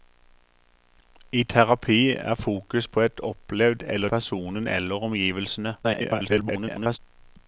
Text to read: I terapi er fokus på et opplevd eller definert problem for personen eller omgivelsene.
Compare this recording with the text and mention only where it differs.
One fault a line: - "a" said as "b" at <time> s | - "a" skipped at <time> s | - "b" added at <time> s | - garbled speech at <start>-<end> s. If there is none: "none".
- "definert problem for" skipped at 4.1 s
- garbled speech at 5.8-7.0 s